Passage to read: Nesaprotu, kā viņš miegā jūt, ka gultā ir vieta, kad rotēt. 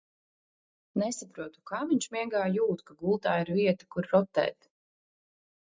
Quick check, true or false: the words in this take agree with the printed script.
false